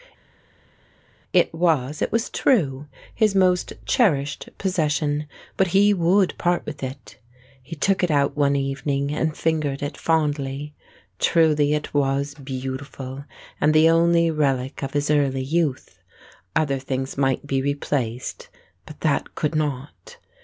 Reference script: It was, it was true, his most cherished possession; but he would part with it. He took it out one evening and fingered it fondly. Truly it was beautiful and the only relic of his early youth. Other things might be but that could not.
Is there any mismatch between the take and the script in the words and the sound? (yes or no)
yes